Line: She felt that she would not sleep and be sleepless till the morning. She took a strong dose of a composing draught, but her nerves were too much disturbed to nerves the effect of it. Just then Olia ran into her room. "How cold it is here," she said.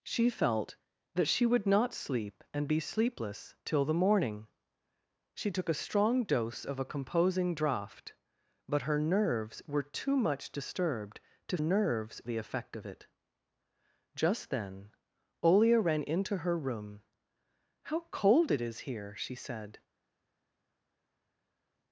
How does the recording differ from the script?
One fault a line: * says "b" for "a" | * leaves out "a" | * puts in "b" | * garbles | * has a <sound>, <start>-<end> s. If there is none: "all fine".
all fine